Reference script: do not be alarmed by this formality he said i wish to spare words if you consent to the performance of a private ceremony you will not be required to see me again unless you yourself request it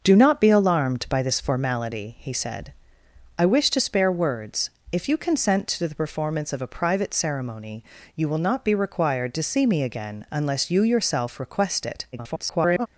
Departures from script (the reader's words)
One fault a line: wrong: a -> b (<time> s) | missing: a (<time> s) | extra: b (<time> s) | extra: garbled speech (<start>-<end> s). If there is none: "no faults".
extra: garbled speech (12.1-12.9 s)